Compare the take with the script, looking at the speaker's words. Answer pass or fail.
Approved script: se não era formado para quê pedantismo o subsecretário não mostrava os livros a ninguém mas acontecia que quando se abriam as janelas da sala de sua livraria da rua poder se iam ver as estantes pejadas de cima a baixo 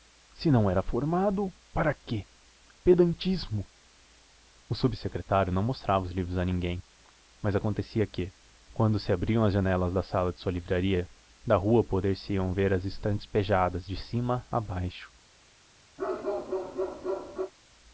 pass